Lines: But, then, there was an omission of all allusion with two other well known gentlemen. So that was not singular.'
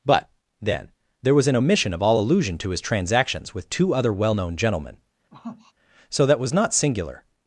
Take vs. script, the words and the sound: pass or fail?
fail